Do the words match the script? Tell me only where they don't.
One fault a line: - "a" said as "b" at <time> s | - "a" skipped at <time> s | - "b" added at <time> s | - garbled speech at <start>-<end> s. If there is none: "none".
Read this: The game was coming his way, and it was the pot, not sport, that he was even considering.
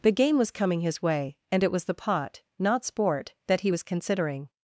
- "even" skipped at 3.8 s